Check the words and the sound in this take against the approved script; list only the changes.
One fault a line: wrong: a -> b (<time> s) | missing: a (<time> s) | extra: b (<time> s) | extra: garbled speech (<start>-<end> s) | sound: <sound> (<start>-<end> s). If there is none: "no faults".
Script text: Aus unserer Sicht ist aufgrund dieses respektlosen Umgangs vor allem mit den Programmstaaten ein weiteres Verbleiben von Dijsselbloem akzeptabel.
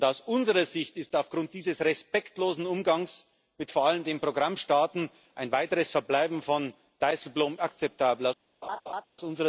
sound: laugh (8.6-9.0 s)